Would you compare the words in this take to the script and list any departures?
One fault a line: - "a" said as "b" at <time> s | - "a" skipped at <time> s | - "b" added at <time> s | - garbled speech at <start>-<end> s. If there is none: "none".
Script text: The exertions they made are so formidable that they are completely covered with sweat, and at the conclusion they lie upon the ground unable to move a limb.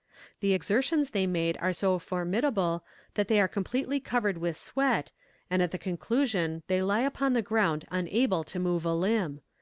none